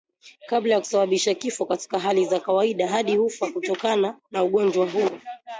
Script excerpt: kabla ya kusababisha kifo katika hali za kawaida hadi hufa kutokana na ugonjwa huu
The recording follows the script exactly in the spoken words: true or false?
true